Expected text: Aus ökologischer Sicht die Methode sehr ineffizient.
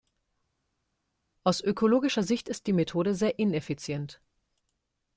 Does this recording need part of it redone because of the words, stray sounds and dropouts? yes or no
yes